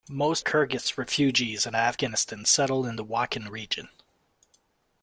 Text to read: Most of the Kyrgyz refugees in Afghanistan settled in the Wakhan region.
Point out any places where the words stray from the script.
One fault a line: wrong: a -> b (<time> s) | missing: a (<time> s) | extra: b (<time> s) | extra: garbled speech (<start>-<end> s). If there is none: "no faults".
missing: of the (0.4 s)